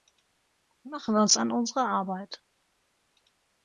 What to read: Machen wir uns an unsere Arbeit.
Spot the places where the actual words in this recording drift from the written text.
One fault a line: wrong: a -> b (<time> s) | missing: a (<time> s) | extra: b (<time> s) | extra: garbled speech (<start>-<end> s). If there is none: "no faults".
no faults